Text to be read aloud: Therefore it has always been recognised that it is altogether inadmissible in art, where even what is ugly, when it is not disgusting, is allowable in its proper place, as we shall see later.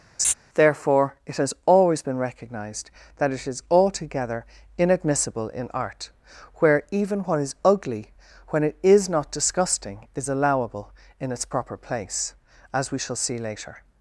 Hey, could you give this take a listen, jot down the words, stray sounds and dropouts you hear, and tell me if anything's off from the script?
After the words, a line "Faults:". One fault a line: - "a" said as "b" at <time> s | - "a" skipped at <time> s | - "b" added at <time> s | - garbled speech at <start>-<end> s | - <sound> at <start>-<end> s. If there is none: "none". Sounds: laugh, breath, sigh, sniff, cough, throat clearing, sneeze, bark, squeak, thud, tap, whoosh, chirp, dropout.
Therefore it has always been recognised that it is altogether inadmissible in art, where even what is ugly, when it is not disgusting, is allowable in its proper place, as we shall see later.
Faults:
- laugh at 0.2-0.3 s